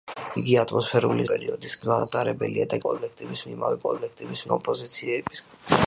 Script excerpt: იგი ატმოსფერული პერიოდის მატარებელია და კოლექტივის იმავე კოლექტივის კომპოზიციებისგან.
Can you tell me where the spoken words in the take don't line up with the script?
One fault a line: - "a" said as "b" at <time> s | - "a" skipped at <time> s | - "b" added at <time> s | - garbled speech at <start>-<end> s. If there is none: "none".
none